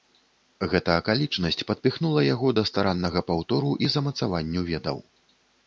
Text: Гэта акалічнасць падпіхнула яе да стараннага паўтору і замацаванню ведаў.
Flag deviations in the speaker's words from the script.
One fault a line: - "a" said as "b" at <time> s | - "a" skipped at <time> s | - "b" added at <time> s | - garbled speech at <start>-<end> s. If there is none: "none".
- "яе" said as "яго" at 2.3 s